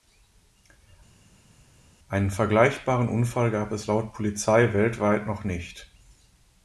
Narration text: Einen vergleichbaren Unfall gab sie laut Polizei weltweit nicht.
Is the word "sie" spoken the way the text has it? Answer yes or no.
no